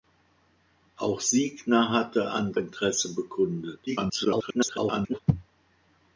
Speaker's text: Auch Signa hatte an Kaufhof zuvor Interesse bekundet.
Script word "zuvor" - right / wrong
wrong